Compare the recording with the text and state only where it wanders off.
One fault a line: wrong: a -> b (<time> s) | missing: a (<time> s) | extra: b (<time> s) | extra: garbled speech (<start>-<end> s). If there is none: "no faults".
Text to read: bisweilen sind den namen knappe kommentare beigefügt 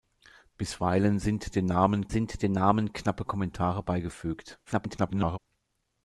extra: sind den namen (2.1 s)
extra: garbled speech (4.7-5.4 s)